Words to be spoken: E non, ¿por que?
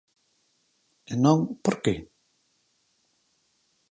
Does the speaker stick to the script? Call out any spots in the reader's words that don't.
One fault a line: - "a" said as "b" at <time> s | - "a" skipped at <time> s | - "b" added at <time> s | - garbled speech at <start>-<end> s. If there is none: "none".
none